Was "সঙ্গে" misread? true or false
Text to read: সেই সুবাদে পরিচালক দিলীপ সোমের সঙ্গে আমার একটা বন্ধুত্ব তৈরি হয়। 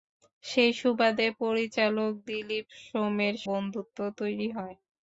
true